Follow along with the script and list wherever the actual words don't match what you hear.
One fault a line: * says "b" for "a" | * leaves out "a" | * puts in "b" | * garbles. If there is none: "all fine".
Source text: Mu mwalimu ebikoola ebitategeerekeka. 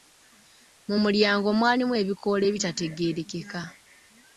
* puts in "mulyango"